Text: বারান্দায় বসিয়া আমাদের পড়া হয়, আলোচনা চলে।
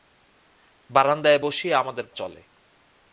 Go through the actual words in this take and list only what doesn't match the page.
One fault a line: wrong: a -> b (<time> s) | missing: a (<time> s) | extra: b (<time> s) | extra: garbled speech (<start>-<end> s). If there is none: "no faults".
missing: পড়া হয় আলোচনা (2.1 s)